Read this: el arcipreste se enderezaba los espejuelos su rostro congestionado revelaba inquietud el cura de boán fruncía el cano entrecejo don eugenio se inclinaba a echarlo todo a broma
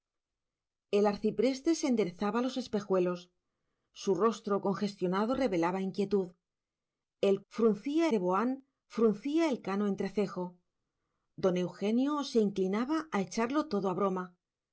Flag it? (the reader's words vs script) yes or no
yes